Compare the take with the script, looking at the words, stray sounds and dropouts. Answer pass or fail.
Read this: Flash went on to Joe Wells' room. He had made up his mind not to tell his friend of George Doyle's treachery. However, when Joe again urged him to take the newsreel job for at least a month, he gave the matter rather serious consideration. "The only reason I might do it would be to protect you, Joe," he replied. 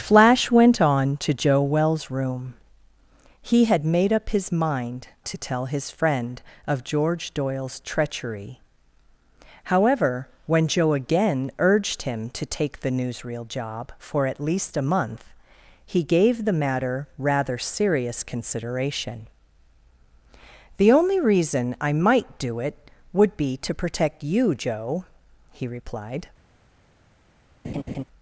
fail